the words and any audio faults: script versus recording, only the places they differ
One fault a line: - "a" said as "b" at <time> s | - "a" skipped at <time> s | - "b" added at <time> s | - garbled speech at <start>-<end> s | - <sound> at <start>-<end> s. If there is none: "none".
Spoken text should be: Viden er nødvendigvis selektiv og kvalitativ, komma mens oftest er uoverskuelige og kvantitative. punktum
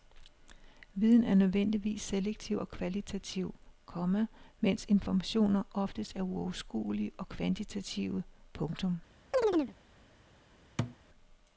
- "informationer" added at 4.9 s
- chirp at 9.3-9.7 s
- thud at 10.8-11.0 s